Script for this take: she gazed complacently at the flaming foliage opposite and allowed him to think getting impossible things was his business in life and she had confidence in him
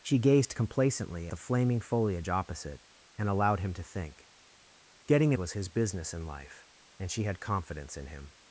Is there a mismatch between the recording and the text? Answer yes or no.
yes